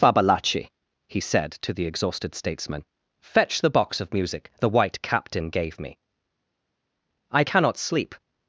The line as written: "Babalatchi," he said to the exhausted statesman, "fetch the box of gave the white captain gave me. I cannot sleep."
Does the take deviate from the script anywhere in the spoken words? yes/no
yes